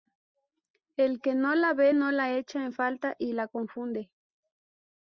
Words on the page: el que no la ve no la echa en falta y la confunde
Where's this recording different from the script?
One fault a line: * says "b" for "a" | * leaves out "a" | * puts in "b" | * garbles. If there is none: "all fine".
all fine